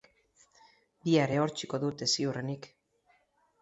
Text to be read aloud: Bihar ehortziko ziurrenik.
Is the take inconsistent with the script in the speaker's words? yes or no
yes